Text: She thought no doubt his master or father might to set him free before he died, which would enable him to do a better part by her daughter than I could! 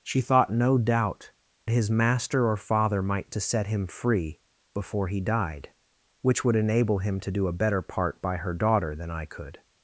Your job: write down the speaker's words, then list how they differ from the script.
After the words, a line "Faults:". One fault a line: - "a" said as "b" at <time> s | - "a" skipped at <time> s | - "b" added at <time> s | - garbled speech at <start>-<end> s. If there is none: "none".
She thought no doubt his master or father might to set him free before he died, which would enable him to do a better part by her daughter than I could!
Faults:
none